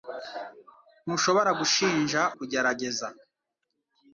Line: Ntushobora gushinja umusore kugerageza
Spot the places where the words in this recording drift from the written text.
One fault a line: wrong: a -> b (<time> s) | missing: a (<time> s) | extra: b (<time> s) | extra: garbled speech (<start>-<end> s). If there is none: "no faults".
missing: umusore (2.2 s)